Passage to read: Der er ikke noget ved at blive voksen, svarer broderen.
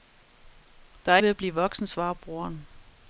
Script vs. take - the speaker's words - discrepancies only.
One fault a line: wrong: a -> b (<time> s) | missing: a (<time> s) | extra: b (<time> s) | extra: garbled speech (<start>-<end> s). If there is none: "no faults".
missing: ikke noget (1.2 s)